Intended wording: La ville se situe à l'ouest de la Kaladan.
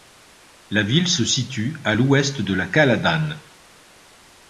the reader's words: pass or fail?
pass